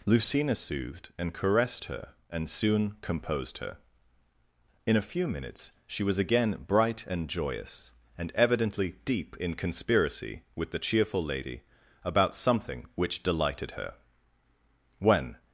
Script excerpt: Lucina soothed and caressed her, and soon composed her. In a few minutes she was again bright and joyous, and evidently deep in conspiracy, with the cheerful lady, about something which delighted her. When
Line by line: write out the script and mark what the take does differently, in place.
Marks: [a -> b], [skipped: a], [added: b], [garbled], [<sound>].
Lucina soothed and caressed her, and soon composed her. In a few minutes she was again bright and joyous, and evidently deep in conspiracy, with the cheerful lady, about something which delighted her. When